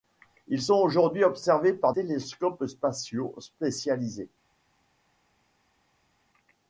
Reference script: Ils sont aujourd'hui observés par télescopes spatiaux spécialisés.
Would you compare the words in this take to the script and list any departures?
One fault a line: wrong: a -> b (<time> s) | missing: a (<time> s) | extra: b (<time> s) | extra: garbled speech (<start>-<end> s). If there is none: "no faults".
no faults